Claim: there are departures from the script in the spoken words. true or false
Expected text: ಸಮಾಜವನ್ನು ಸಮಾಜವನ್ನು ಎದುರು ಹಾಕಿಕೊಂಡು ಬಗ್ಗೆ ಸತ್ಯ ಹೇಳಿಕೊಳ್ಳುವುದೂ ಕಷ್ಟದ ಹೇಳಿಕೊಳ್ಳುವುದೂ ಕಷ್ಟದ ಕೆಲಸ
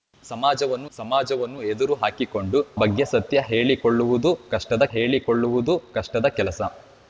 false